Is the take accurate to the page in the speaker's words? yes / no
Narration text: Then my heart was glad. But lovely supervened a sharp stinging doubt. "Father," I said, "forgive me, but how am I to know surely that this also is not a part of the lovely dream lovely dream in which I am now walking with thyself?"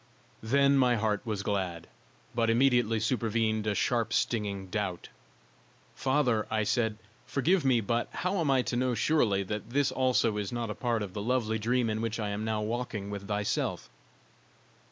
no